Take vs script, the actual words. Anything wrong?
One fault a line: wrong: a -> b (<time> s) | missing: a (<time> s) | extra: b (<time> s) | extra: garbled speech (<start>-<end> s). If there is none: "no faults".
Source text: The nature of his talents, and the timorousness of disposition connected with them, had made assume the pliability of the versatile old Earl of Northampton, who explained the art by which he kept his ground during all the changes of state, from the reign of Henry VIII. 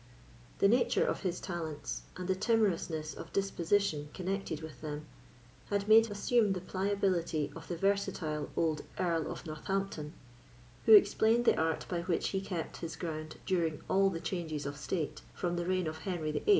no faults